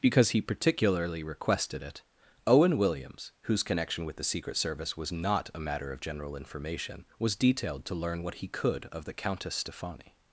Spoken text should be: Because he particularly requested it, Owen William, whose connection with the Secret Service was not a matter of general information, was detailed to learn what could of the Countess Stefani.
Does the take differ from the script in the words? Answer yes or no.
yes